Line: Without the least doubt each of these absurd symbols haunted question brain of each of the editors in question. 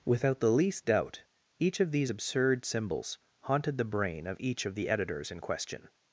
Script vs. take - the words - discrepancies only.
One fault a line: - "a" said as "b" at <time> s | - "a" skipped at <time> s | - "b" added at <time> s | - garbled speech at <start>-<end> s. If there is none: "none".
- "question" said as "the" at 3.8 s